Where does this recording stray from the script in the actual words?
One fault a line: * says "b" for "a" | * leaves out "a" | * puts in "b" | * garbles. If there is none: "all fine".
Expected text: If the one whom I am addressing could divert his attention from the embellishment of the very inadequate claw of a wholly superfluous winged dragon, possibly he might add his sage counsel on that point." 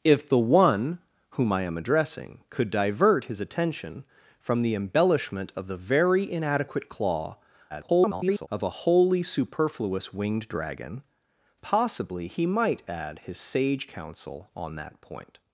* garbles